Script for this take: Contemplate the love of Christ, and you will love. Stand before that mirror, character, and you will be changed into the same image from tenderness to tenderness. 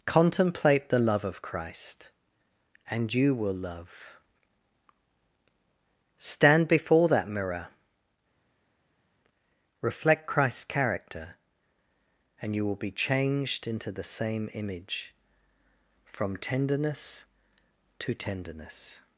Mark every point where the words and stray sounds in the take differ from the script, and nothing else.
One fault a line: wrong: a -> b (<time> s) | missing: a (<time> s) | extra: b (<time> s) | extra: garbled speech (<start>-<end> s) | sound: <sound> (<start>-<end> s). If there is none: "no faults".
extra: reflect Christ's (9.8 s)